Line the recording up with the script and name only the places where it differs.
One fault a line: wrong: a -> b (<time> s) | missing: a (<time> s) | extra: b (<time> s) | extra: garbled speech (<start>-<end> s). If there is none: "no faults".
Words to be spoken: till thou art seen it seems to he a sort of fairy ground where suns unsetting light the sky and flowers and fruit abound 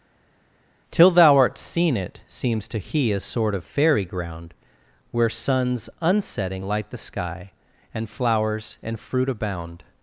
no faults